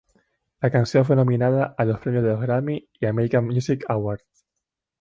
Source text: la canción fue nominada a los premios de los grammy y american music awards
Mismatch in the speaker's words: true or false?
false